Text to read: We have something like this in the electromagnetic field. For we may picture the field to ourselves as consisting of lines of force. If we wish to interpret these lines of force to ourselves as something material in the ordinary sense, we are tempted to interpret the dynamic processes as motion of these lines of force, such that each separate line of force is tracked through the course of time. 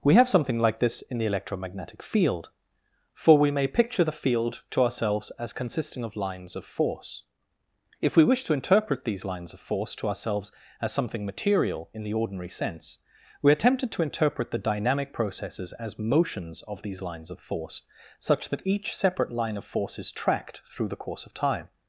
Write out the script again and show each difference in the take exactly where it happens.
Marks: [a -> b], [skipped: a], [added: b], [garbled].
We have something like this in the electromagnetic field. For we may picture the field to ourselves as consisting of lines of force. If we wish to interpret these lines of force to ourselves as something material in the ordinary sense, we are tempted to interpret the dynamic processes as [motion -> motions] of these lines of force, such that each separate line of force is tracked through the course of time.